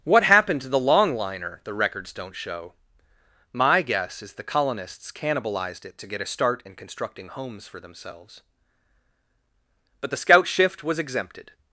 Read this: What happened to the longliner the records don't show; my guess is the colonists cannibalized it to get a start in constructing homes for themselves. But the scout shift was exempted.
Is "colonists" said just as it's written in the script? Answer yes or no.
yes